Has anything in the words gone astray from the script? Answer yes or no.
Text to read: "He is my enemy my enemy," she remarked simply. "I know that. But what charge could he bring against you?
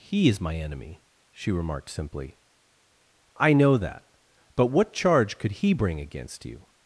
yes